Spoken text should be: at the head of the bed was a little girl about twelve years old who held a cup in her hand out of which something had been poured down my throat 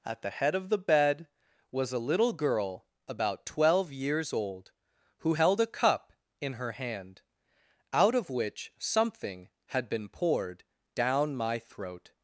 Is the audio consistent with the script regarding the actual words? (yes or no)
yes